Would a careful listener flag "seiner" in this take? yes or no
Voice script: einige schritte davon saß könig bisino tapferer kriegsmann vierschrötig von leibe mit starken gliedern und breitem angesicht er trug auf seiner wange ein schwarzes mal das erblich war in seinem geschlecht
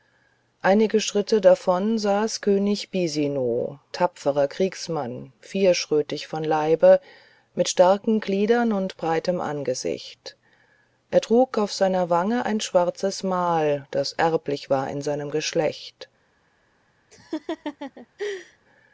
no